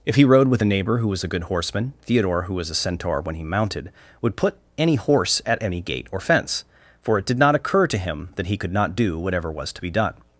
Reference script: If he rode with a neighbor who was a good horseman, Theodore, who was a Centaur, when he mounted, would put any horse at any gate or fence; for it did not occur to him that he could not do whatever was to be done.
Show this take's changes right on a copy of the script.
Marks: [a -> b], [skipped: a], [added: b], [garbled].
If he rode with a neighbor who was a good horseman, Theodore, who was a Centaur, when he mounted, would put any horse at any gate or fence; for it did not occur to him that he could not do whatever was to be done.